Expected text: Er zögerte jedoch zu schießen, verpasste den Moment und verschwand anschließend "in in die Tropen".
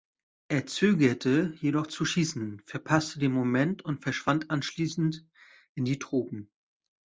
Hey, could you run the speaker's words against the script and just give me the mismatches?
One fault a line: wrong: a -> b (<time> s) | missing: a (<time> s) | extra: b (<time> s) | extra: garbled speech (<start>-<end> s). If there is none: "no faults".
missing: in (5.9 s)